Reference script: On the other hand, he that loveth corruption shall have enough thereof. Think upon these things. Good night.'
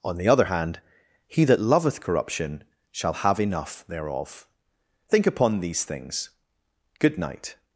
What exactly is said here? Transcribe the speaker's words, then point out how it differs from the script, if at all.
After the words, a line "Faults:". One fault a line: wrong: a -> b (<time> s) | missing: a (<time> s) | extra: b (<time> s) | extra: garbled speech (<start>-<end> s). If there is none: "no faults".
On the other hand, he that loveth corruption shall have enough thereof. Think upon these things. Good night.'
Faults:
no faults